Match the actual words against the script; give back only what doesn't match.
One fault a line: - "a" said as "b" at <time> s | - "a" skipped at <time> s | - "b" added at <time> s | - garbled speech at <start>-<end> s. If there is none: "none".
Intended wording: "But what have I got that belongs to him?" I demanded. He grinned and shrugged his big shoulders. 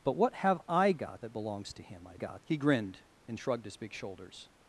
- "demanded" said as "got" at 2.1 s